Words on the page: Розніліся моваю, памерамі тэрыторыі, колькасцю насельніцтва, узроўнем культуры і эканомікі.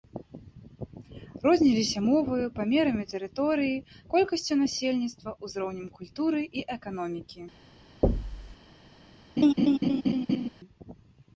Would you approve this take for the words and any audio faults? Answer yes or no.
no